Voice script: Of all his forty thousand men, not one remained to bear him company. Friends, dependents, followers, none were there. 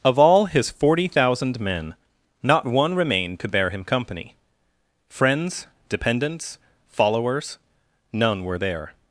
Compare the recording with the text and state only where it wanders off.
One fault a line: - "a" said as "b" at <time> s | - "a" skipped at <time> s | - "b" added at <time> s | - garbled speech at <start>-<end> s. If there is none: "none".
none